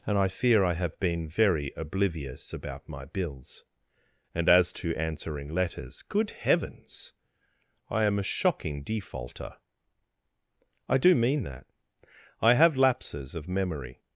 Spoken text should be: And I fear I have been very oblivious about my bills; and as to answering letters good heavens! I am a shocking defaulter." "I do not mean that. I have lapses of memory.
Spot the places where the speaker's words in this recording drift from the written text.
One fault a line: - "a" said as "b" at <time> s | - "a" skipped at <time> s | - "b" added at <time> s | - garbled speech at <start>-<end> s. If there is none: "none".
- "not" skipped at 11.2 s